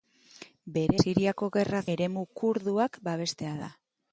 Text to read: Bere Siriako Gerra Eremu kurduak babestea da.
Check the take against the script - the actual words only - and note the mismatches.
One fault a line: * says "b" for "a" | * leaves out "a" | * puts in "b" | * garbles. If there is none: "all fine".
all fine